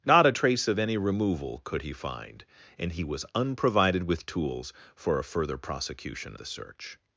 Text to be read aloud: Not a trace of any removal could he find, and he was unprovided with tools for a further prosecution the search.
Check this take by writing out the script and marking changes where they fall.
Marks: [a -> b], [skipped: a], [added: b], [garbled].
Not a trace of any removal could he find, and he was unprovided with tools for a further prosecution the search.